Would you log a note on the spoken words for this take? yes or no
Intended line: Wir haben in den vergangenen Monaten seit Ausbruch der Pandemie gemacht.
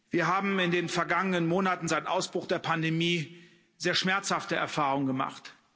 yes